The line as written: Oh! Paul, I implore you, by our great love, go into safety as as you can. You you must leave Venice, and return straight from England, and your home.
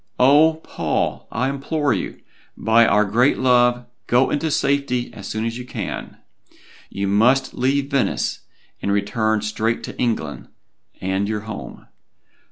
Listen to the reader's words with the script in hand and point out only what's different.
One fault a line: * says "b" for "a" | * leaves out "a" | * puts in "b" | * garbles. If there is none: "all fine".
* puts in "soon"
* leaves out "you"
* says "to" for "from"